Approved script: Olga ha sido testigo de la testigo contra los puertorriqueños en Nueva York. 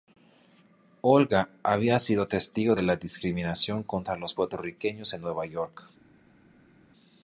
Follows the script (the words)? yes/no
no